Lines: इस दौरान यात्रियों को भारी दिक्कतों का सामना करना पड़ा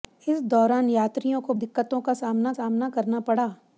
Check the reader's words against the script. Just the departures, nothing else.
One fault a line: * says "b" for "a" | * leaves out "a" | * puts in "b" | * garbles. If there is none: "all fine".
* leaves out "भारी"
* puts in "सामना"